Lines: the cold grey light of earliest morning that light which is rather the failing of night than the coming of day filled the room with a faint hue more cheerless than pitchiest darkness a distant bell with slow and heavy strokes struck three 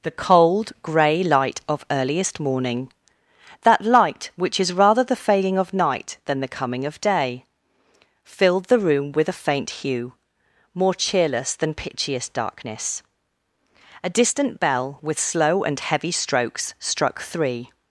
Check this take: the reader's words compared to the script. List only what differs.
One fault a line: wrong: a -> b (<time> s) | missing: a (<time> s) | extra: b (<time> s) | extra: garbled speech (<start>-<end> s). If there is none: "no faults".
no faults